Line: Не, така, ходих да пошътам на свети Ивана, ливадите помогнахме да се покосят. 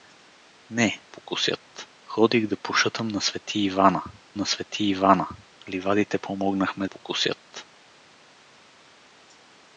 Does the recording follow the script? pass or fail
fail